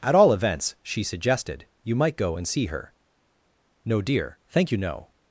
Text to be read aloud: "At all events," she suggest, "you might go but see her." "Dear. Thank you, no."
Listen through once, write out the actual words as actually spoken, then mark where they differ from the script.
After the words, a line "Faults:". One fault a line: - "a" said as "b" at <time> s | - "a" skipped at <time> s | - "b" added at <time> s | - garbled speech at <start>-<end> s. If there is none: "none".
"At all events," she suggested, "you might go and see her." "No, dear. Thank you, no."
Faults:
- "suggest" said as "suggested" at 1.0 s
- "but" said as "and" at 2.4 s
- "No" added at 3.9 s